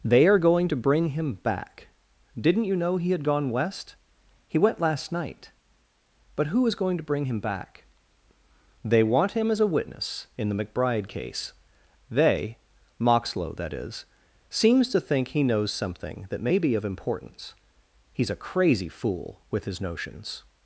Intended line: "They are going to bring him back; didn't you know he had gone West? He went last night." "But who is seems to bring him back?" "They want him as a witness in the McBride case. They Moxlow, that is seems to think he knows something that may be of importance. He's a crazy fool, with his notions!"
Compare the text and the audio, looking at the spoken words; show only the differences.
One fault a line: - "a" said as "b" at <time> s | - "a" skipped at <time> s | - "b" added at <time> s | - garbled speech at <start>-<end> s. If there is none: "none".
- "seems" said as "going" at 6.7 s